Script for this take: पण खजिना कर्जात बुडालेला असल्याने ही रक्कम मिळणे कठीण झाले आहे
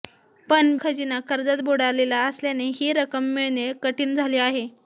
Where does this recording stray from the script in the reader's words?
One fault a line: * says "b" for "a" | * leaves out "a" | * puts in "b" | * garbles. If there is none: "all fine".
all fine